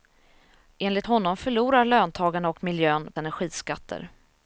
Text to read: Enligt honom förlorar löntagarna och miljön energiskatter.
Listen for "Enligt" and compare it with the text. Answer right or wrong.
right